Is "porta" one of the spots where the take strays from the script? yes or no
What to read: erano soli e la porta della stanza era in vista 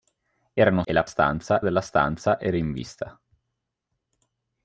yes